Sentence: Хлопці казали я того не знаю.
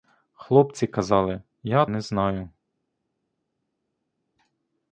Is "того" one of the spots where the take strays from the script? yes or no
yes